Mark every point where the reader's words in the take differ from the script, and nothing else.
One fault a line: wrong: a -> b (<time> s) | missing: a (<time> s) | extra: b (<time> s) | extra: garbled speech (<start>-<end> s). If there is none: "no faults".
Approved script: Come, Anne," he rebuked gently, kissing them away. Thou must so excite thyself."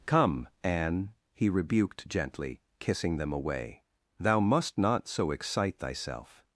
extra: not (4.8 s)